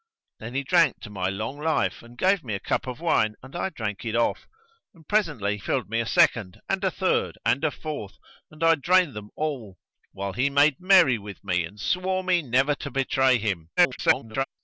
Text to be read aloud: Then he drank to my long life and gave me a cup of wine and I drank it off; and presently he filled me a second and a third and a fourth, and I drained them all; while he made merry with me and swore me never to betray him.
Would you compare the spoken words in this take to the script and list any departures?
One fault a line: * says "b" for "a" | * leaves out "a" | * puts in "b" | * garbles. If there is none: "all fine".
* leaves out "he"
* garbles